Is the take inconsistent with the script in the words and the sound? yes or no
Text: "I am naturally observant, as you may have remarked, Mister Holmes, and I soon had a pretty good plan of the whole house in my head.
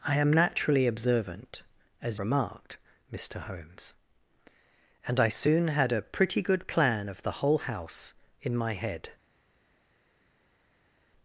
yes